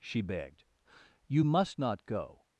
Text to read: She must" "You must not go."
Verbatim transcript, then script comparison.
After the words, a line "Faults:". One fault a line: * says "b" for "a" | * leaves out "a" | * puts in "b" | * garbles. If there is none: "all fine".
She begged" "You must not go."
Faults:
* says "begged" for "must"